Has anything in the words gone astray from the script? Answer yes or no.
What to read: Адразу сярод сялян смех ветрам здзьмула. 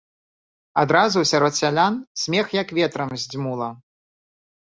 yes